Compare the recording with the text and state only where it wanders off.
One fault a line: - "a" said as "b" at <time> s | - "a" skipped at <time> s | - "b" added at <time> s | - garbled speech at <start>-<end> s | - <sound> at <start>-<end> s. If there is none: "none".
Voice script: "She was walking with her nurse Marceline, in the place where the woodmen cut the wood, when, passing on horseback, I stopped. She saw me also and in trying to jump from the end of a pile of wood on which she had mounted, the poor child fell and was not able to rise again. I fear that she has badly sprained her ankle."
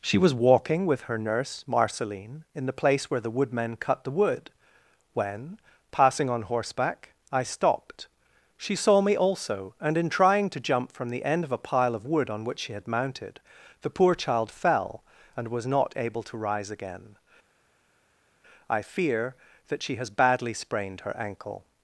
none